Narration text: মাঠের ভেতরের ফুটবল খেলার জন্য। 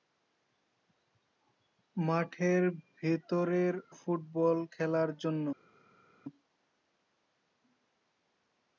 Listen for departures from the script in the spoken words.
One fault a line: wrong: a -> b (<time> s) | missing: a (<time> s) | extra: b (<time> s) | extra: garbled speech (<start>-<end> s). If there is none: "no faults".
no faults